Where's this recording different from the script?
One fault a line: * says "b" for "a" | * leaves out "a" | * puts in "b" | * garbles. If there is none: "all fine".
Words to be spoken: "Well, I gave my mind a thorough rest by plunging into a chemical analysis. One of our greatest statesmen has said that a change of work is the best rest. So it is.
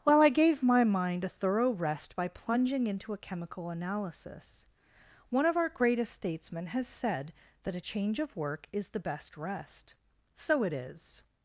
all fine